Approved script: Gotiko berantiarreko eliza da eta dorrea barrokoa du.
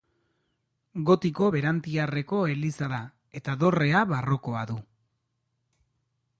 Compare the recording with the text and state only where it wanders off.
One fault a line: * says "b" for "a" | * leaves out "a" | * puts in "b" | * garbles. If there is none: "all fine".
all fine